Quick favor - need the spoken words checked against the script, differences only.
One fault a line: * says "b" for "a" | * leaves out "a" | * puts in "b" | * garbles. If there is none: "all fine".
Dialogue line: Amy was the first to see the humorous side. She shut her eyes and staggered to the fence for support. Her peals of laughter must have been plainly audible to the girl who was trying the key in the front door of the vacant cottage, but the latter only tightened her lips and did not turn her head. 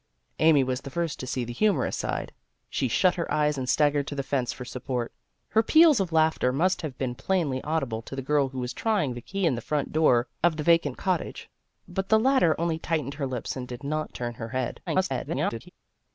* garbles